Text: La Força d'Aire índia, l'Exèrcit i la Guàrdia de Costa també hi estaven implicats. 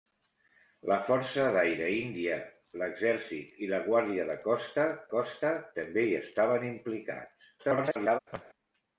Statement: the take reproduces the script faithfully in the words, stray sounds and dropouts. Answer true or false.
false